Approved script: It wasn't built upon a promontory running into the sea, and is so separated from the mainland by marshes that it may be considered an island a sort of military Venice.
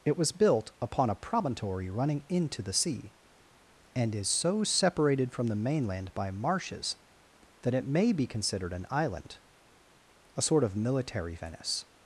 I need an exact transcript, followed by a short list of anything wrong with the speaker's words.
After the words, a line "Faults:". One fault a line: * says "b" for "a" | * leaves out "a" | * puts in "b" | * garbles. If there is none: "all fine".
It was built upon a promontory running into the sea, and is so separated from the mainland by marshes that it may be considered an island a sort of military Venice.
Faults:
* says "was" for "wasn't"